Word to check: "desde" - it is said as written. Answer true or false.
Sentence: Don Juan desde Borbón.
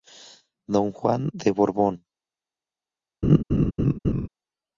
false